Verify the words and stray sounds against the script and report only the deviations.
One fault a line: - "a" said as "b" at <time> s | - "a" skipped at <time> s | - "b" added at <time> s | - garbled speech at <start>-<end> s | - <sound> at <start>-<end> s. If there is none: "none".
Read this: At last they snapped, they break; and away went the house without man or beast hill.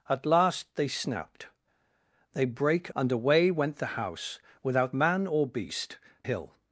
none